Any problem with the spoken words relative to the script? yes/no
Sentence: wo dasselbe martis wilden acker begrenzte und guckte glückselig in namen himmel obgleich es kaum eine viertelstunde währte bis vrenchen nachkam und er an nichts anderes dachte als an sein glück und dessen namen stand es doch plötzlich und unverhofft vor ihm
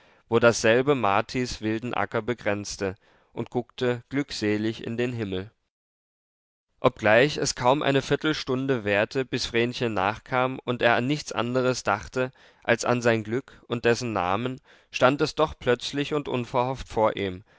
yes